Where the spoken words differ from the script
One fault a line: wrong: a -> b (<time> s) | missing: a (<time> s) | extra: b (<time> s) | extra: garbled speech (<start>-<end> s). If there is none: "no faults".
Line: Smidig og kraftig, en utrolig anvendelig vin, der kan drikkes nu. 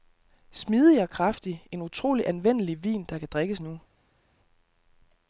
no faults